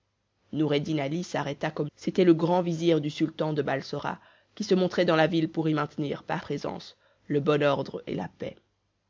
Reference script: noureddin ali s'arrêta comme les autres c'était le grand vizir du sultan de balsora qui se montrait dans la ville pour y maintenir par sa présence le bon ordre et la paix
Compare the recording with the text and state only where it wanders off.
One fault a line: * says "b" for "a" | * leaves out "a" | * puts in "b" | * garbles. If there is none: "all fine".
* leaves out "les autres"
* leaves out "sa"